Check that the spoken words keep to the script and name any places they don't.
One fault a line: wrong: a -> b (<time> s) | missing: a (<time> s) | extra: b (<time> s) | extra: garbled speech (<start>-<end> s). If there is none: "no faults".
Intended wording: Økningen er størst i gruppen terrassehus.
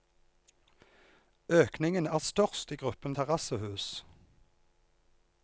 no faults